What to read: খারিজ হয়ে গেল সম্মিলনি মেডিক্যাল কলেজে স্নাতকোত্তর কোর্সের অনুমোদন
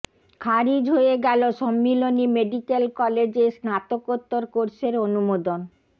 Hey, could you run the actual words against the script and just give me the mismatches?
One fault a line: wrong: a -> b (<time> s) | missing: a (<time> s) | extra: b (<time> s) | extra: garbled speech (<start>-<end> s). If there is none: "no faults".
no faults